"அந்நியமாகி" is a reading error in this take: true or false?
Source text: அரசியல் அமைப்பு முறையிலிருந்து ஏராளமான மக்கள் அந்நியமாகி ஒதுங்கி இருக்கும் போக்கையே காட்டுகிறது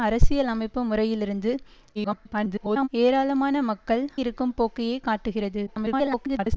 true